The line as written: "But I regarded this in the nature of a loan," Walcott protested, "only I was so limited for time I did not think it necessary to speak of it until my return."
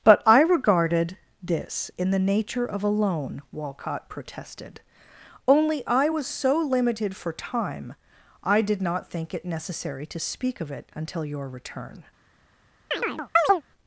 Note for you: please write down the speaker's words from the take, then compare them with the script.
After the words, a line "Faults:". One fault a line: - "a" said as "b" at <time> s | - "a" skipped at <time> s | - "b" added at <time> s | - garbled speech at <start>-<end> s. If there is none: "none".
"But I regarded this in the nature of a loan," Walcott protested, "only I was so limited for time I did not think it necessary to speak of it until your return."
Faults:
- "my" said as "your" at 11.3 s